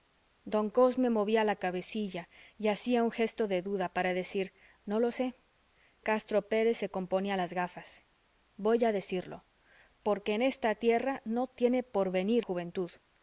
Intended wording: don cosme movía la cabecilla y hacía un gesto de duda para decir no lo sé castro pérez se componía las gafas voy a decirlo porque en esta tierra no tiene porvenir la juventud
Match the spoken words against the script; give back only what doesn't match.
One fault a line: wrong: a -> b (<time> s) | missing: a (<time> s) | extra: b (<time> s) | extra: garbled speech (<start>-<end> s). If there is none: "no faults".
missing: la (12.4 s)